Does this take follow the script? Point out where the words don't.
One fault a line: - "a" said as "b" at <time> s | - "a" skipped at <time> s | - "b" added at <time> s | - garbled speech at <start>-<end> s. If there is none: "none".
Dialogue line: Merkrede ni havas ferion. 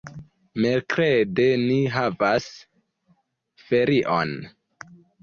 none